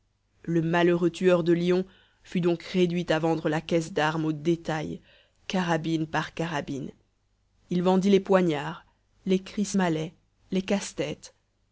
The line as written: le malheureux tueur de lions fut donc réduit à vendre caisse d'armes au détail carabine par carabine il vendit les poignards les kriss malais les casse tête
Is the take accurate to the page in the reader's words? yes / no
no